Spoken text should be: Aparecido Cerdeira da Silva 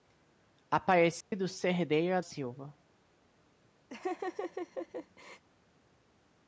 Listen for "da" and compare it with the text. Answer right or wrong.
wrong